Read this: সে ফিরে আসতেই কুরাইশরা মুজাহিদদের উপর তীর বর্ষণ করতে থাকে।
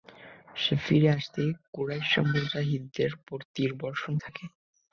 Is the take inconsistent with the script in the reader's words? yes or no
yes